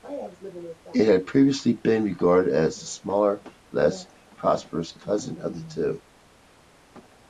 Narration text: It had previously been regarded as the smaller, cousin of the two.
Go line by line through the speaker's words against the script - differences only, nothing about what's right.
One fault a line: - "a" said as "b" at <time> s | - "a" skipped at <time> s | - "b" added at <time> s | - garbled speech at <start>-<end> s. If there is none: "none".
- "less prosperous" added at 3.7 s